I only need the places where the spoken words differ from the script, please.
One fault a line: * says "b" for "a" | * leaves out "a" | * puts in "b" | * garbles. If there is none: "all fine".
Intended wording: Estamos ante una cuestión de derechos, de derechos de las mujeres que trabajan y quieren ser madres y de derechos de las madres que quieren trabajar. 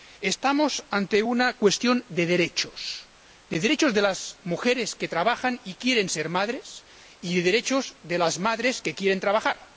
all fine